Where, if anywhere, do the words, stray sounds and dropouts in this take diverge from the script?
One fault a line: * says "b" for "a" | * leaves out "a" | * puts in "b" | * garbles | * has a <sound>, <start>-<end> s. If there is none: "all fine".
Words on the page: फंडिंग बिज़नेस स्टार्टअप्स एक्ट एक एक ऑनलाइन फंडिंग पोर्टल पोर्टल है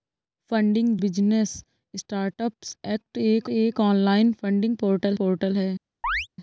* has a chirp, 6.0-6.3 s